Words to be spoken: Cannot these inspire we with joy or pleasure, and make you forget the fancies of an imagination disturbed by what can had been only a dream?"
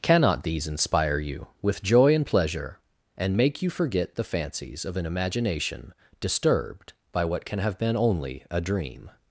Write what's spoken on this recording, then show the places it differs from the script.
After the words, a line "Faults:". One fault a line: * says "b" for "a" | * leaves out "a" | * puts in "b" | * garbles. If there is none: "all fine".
Cannot these inspire you with joy and pleasure, and make you forget the fancies of an imagination disturbed by what can have been only a dream?"
Faults:
* says "you" for "we"
* says "and" for "or"
* says "have" for "had"